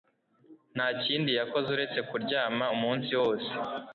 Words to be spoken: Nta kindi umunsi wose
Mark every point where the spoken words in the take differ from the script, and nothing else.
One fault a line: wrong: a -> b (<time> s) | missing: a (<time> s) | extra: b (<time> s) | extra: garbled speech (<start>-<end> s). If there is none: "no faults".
extra: yakoze uretse kuryama (1.4 s)